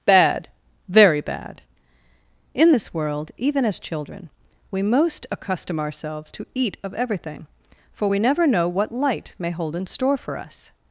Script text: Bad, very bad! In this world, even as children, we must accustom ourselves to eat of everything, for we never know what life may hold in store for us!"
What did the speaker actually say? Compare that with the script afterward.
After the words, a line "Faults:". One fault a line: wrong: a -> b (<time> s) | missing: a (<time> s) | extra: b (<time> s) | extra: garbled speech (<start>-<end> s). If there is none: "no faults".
Bad, very bad! In this world, even as children, we most accustom ourselves to eat of everything, for we never know what light may hold in store for us!"
Faults:
wrong: must -> most (4.8 s)
wrong: life -> light (8.9 s)